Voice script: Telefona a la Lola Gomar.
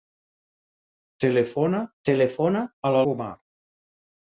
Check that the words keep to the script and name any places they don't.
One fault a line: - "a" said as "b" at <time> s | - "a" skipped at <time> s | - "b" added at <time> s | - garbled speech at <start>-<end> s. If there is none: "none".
- "telefona" added at 2.1 s
- "Lola" skipped at 3.0 s